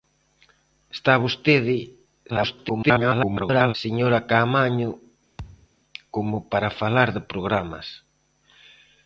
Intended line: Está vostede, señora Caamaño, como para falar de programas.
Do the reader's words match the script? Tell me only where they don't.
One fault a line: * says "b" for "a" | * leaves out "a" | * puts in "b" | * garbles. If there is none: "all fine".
* garbles